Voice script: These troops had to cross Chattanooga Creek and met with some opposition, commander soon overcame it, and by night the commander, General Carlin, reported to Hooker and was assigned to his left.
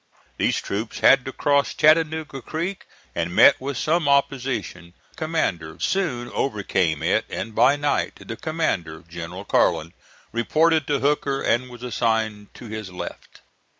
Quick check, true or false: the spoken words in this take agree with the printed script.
true